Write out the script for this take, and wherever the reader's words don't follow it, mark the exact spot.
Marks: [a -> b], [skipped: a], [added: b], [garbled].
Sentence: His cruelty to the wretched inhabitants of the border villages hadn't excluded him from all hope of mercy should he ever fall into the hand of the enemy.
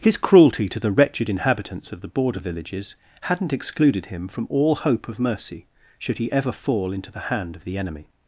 His cruelty to the wretched inhabitants of the border villages hadn't excluded him from all hope of mercy should he ever fall into the hand of the enemy.